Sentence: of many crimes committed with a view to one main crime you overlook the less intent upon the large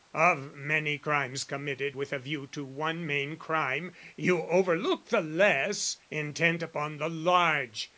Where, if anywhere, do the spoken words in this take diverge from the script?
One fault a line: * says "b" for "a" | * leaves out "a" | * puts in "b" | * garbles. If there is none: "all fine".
all fine